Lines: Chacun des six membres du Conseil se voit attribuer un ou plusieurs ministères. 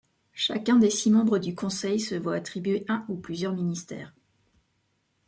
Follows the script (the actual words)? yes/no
yes